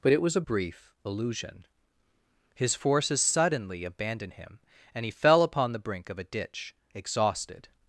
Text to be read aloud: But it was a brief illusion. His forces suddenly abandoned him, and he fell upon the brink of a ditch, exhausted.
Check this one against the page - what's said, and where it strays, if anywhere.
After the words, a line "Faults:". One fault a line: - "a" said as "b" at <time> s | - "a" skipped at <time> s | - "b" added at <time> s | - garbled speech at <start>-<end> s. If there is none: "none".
But it was a brief illusion. His forces suddenly abandoned him, and he fell upon the brink of a ditch, exhausted.
Faults:
none